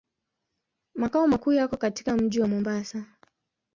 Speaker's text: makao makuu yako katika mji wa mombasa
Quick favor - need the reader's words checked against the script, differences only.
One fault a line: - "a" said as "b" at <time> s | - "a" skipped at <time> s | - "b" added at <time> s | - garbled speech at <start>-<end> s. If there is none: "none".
none